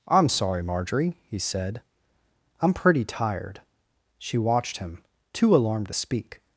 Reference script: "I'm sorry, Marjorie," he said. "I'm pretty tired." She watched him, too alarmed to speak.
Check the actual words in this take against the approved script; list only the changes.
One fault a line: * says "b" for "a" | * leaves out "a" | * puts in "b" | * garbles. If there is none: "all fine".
all fine